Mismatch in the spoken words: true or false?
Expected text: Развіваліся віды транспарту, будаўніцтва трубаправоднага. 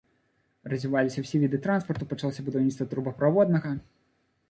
true